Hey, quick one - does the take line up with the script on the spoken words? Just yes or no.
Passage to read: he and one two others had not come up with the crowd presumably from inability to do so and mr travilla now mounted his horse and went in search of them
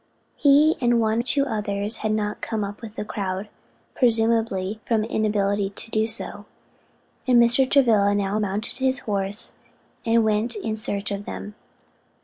yes